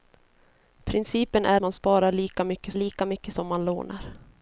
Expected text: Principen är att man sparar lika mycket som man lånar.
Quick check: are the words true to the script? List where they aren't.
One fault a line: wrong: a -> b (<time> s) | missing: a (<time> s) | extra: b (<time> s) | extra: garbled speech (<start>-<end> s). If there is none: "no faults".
missing: att (1.6 s)
extra: lika mycket (2.7 s)